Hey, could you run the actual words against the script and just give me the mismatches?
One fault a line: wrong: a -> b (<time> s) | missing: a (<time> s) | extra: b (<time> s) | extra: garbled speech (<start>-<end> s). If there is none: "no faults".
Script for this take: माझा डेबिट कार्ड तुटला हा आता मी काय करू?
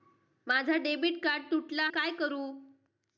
missing: हा आता मी (1.9 s)